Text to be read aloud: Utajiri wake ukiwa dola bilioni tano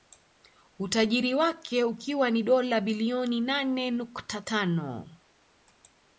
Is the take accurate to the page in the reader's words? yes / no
no